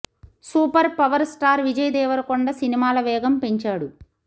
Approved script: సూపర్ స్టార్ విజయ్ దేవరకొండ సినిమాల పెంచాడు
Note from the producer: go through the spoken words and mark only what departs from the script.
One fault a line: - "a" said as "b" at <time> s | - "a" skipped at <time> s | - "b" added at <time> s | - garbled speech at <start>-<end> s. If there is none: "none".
- "పవర్" added at 1.0 s
- "వేగం" added at 3.0 s